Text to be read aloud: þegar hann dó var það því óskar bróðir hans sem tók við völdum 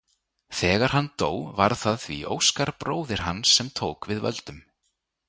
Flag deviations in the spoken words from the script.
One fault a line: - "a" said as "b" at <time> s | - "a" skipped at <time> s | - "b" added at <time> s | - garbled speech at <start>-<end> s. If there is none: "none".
none